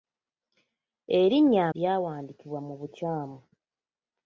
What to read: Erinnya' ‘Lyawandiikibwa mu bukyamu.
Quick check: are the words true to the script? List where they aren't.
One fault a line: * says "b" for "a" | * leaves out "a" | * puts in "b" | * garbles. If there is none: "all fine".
all fine